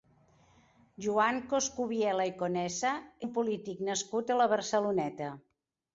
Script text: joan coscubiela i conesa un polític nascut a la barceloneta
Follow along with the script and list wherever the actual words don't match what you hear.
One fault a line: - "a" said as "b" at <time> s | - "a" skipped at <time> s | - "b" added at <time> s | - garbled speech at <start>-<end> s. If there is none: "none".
none